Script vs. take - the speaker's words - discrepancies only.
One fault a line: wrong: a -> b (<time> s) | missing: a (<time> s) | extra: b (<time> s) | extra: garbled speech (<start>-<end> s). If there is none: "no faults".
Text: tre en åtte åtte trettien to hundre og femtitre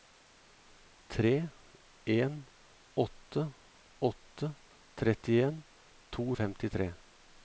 missing: hundre (6.3 s)